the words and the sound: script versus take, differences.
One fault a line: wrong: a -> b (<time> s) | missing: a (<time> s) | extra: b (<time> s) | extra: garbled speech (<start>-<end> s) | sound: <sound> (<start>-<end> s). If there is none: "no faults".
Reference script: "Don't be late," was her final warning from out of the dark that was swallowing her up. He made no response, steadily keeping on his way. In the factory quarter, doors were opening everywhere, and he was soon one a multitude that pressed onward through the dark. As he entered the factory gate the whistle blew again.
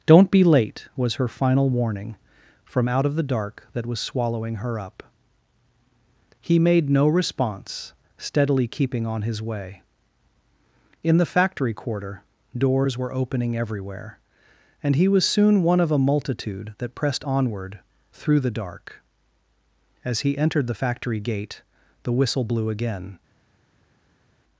extra: of (15.8 s)